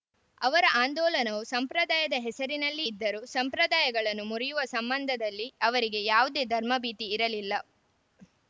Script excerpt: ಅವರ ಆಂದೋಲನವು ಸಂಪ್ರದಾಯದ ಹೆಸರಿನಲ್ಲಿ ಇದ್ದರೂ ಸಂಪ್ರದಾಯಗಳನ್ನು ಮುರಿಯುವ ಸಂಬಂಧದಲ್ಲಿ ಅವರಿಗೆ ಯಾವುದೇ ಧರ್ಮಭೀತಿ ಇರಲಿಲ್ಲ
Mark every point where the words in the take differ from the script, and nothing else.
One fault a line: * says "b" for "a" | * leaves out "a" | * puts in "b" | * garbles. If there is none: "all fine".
all fine